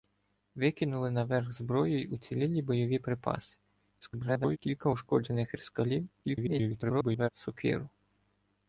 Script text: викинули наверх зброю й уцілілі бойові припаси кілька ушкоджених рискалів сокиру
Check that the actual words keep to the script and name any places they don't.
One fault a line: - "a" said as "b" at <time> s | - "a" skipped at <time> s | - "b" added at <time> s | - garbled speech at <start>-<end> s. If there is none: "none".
- garbled speech at 4.0-4.6 s
- garbled speech at 6.2-7.3 s